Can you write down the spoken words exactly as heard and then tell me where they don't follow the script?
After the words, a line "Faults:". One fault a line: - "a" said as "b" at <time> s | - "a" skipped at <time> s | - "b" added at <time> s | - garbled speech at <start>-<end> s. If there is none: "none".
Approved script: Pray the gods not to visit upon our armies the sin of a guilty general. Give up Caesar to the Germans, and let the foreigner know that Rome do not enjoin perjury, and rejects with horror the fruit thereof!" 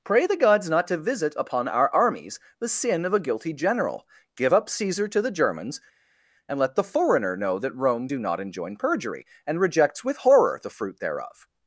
Pray the gods not to visit upon our armies the sin of a guilty general. Give up Caesar to the Germans, and let the foreigner know that Rome do not enjoin perjury, and rejects with horror the fruit thereof!"
Faults:
none